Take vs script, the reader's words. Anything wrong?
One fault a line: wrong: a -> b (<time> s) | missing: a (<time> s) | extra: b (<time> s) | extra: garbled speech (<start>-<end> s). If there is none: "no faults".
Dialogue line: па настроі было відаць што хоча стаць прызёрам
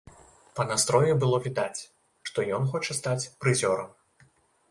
extra: ён (2.6 s)